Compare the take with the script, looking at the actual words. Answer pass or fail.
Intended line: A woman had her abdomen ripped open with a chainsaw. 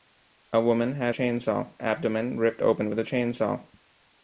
fail